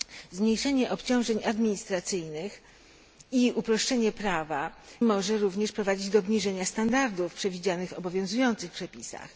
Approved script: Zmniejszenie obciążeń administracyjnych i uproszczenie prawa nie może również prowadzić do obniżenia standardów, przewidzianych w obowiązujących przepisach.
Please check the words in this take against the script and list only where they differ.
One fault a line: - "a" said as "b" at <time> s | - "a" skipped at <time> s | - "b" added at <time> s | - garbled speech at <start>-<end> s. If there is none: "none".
- "nie" skipped at 4.7 s